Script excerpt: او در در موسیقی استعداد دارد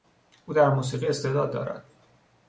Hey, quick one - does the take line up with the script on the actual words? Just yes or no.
no